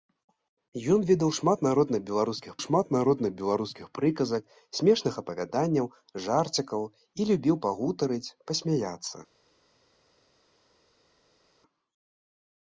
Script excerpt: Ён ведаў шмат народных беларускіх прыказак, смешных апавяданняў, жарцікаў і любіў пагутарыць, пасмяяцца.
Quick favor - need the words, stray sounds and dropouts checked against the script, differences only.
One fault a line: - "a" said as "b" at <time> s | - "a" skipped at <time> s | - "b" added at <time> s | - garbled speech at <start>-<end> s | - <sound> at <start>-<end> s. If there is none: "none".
- "шмат народных беларускіх" added at 2.7 s